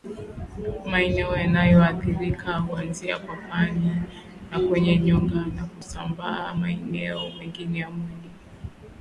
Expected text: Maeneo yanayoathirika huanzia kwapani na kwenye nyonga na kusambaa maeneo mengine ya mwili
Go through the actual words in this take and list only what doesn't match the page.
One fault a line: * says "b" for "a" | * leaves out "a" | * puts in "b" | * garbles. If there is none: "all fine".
all fine